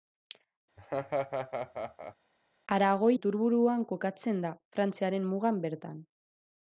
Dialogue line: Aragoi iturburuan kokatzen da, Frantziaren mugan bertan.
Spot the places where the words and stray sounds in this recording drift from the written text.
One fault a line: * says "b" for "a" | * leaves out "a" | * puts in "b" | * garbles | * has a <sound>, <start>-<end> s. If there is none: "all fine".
* has a laugh, 0.8-2.2 s